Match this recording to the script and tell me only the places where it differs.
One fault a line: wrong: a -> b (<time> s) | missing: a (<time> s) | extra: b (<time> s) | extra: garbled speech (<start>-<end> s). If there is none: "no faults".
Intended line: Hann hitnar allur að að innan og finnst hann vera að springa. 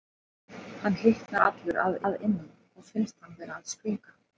no faults